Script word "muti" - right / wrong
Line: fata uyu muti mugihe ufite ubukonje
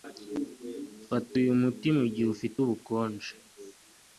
right